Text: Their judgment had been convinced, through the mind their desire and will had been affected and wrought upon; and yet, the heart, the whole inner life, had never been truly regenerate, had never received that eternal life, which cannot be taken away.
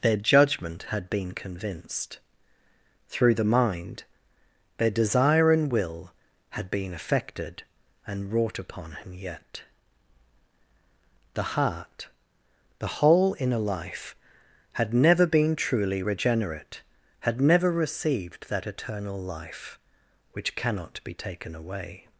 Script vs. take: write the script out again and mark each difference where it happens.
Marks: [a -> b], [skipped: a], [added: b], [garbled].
Their judgment had been convinced, through the mind their desire and will had been affected and wrought upon; [and -> him] yet, the heart, the whole inner life, had never been truly regenerate, had never received that eternal life, which cannot be taken away.